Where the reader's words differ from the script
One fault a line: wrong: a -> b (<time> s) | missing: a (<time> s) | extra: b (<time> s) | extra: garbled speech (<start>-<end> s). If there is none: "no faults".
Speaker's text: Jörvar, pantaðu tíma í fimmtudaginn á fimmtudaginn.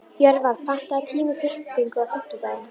wrong: fimmtudaginn -> klippingu (1.4 s)